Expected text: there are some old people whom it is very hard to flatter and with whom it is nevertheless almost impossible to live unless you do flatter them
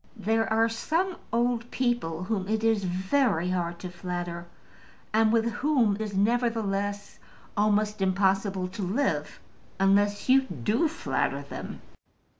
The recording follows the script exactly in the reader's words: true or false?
false